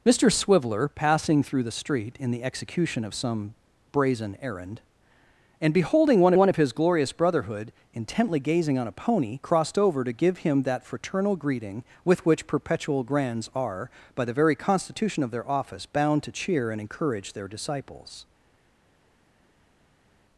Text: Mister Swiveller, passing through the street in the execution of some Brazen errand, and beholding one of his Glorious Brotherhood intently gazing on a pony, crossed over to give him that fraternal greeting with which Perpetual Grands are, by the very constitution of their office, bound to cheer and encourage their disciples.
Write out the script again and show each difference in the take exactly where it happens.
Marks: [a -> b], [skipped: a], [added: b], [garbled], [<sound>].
Mister Swiveller, passing through the street in the execution of some Brazen errand, and beholding one [added: one] of his Glorious Brotherhood intently gazing on a pony, crossed over to give him that fraternal greeting with which Perpetual Grands are, by the very constitution of their office, bound to cheer and encourage their disciples.